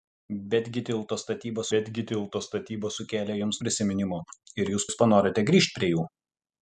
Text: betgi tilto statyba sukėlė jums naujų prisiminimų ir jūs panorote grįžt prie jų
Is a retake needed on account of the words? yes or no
yes